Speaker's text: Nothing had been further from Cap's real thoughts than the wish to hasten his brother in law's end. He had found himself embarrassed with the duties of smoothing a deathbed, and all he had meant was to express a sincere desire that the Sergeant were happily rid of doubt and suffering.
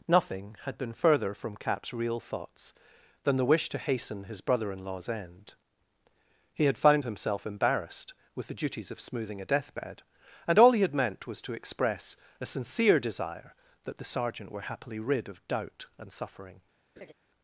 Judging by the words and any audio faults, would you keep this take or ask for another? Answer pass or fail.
fail